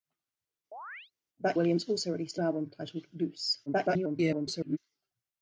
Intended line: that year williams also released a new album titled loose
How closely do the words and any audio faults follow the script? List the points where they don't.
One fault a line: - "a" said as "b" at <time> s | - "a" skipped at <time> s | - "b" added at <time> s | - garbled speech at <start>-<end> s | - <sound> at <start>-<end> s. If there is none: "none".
- chirp at 0.7-1.1 s
- "year" skipped at 1.6 s
- "new" skipped at 2.4 s
- garbled speech at 3.7-4.8 s